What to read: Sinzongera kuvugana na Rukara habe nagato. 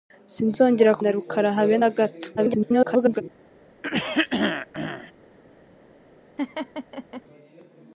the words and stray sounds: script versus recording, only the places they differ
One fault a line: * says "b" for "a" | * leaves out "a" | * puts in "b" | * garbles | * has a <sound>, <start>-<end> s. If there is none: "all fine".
* leaves out "kuvugana"
* garbles
* has a throat clearing, 3.8-5.1 s
* has a laugh, 6.4-7.2 s